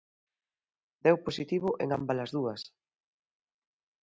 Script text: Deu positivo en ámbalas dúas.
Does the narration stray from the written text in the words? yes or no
no